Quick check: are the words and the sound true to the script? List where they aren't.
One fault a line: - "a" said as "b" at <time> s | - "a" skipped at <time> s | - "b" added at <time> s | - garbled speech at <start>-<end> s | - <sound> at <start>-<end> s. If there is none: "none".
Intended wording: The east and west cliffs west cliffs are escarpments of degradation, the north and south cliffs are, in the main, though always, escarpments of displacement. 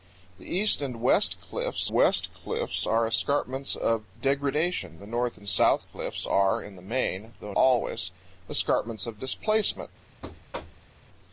- thud at 10.2-10.9 s